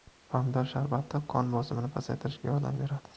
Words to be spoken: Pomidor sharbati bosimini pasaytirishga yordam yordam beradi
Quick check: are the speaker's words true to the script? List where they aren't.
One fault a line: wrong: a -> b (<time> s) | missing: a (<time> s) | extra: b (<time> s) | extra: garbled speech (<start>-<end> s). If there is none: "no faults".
extra: qon (1.3 s)
missing: yordam (2.8 s)